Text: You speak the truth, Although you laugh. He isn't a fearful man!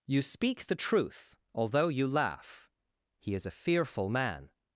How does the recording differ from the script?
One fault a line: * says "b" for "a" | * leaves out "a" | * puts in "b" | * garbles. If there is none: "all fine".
* says "is" for "isn't"